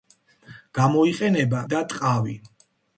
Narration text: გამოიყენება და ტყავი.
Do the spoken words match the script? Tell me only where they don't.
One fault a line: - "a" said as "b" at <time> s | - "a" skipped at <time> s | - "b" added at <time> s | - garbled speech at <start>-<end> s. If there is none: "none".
none